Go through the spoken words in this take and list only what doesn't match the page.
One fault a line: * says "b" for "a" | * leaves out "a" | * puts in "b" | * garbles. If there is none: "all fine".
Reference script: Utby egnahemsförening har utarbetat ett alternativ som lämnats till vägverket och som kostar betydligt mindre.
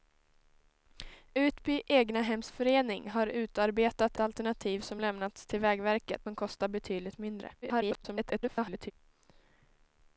* leaves out "ett"
* leaves out "och"
* garbles